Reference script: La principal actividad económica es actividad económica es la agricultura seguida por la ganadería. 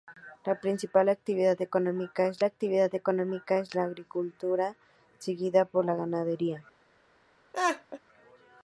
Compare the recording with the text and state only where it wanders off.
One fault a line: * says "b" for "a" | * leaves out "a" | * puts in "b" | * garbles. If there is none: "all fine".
all fine